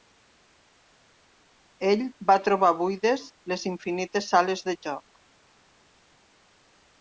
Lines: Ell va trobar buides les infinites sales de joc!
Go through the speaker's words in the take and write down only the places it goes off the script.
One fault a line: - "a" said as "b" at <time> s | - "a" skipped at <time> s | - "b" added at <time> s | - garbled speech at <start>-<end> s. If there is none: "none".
none